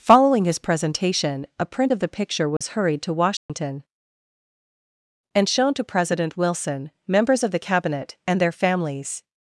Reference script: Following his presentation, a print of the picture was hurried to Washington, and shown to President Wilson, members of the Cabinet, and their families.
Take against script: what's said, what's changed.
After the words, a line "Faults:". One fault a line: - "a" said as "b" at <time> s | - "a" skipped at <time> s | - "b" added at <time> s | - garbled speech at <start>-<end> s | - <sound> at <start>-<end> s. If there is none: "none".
Following his presentation, a print of the picture was hurried to Washington, and shown to President Wilson, members of the Cabinet, and their families.
Faults:
- dropout at 2.6-2.6 s
- dropout at 3.4-3.5 s